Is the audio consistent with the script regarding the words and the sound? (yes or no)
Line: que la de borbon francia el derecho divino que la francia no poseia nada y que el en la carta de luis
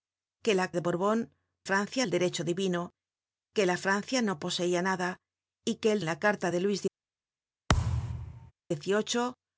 no